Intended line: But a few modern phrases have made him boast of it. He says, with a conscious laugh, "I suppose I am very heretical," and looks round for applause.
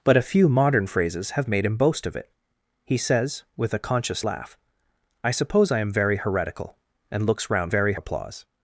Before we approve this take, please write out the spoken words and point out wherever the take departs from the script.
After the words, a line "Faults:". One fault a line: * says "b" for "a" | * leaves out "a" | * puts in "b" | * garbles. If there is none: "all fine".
But a few modern phrases have made him boast of it. He says, with a conscious laugh, "I suppose I am very heretical," and looks round very applause.
Faults:
* says "very" for "for"